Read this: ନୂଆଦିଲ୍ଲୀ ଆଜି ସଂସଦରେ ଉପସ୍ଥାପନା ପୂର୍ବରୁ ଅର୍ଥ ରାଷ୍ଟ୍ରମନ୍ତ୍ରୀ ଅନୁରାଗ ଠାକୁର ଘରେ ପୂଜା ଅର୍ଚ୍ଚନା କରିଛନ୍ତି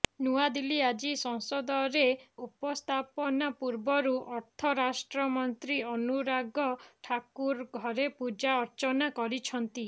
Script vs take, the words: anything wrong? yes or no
no